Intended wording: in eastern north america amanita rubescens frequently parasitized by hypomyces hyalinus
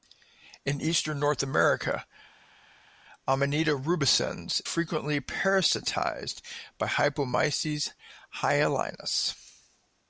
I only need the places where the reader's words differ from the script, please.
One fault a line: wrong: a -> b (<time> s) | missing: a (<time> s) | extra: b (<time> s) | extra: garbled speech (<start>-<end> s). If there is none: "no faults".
no faults